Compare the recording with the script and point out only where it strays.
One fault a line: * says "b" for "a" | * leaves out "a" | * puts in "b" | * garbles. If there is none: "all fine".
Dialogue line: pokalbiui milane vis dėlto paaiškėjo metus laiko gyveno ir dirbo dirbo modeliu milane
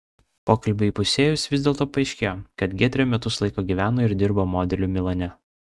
* says "įpusėjus" for "milane"
* puts in "kad giedrė"
* leaves out "dirbo"